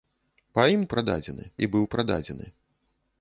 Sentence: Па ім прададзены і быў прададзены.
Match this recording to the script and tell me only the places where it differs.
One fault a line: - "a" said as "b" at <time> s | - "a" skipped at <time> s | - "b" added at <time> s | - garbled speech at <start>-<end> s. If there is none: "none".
none